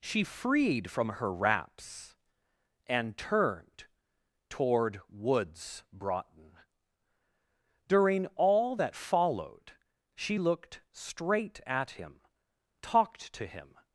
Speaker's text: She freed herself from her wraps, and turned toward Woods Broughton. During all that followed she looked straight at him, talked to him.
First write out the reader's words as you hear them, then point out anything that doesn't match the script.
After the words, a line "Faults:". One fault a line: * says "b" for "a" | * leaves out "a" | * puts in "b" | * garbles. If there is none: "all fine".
She freed from her wraps, and turned toward Woods Broughton. During all that followed she looked straight at him, talked to him.
Faults:
* leaves out "herself"